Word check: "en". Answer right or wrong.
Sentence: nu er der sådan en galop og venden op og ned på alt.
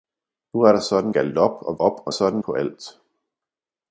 wrong